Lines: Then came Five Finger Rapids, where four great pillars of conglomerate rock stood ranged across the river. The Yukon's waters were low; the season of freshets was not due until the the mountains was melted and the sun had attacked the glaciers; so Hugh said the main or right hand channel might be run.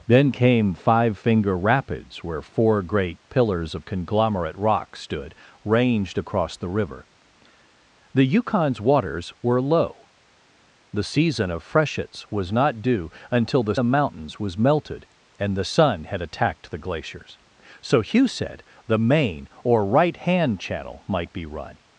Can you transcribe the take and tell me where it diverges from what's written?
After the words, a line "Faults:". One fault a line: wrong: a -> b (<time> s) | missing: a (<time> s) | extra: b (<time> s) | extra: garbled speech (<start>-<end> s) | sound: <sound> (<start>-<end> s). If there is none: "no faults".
Then came Five Finger Rapids, where four great pillars of conglomerate rock stood ranged across the river. The Yukon's waters were low; the season of freshets was not due until the the mountains was melted and the sun had attacked the glaciers; so Hugh said the main or right hand channel might be run.
Faults:
no faults